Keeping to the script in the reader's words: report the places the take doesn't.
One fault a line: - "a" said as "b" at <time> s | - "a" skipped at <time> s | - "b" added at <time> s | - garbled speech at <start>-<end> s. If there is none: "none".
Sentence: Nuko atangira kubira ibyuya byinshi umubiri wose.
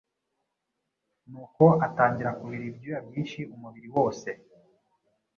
none